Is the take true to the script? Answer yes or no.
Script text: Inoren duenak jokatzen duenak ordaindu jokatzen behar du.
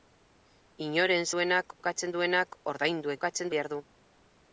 yes